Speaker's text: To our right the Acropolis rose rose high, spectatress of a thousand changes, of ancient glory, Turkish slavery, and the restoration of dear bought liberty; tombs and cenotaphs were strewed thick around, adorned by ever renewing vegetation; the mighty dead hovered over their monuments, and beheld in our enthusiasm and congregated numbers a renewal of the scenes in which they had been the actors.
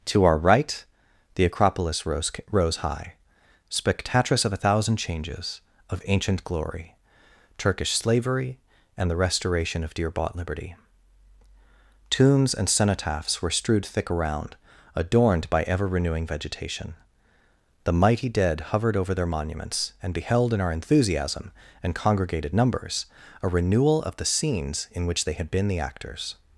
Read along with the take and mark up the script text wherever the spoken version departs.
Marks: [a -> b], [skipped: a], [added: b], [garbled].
To our right the Acropolis rose rose high, spectatress of a thousand changes, of ancient glory, Turkish slavery, and the restoration of dear bought liberty; tombs and cenotaphs were strewed thick around, adorned by ever renewing vegetation; the mighty dead hovered over their monuments, and beheld in our enthusiasm and congregated numbers a renewal of the scenes in which they had been the actors.